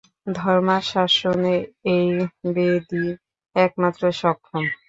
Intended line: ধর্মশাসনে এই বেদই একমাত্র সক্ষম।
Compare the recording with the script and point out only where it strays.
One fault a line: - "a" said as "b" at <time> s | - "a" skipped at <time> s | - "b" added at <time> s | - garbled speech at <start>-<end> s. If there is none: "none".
none